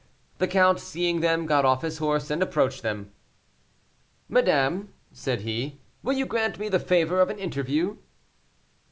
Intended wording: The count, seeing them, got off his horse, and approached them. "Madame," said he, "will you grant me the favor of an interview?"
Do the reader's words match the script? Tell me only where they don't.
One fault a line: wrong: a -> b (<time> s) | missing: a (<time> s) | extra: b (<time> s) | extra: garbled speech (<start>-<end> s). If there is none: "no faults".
no faults